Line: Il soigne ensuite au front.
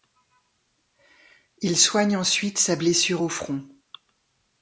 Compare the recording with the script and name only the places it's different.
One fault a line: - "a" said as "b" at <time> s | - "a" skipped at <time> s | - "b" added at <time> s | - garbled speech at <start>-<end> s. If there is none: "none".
- "sa blessure" added at 2.6 s